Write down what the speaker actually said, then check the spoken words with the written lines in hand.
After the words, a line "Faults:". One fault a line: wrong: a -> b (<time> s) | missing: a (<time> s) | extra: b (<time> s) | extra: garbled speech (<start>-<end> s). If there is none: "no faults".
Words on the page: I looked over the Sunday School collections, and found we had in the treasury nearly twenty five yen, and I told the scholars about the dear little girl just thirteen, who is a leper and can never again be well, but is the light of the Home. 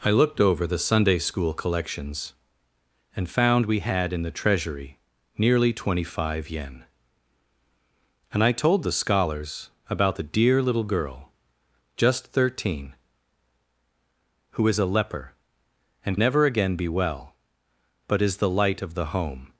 I looked over the Sunday School collections, and found we had in the treasury nearly twenty five yen, and I told the scholars about the dear little girl just thirteen, who is a leper and never again be well, but is the light of the Home.
Faults:
missing: can (16.2 s)